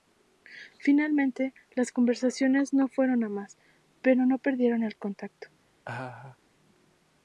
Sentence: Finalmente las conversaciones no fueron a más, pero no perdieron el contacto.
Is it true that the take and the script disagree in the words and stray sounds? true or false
true